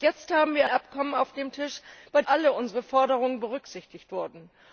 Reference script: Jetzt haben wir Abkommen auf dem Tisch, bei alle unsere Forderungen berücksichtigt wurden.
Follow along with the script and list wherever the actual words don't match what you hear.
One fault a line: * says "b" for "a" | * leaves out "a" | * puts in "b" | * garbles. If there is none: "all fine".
all fine